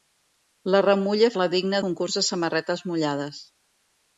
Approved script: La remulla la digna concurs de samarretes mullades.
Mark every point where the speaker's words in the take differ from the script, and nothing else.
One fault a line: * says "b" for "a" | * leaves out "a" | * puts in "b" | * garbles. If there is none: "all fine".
all fine